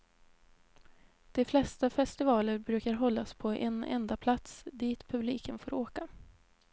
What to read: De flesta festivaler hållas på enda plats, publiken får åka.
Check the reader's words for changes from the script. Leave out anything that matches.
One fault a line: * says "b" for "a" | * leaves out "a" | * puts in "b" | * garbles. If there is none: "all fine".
* puts in "brukar"
* puts in "en"
* puts in "dit"